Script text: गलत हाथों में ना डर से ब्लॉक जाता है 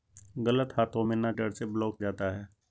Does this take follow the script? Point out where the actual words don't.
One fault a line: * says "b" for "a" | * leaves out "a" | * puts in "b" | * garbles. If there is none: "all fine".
all fine